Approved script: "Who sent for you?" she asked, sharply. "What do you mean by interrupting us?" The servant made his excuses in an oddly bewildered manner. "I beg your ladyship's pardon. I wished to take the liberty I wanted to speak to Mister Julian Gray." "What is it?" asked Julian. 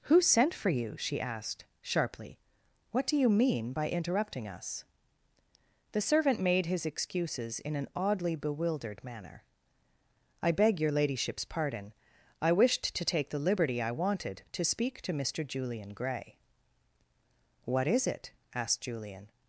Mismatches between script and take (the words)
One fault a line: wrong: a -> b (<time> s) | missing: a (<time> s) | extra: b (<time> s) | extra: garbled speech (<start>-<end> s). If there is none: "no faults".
no faults